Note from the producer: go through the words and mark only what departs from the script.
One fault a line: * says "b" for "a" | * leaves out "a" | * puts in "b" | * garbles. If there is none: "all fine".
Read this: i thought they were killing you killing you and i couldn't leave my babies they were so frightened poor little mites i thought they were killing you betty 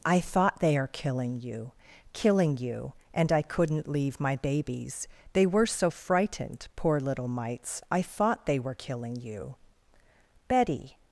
* says "are" for "were"